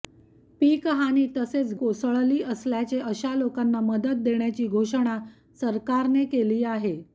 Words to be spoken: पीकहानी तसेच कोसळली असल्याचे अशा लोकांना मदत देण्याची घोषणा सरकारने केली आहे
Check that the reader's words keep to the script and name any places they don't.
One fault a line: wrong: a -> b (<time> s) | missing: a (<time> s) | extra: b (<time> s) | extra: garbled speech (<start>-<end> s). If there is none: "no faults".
no faults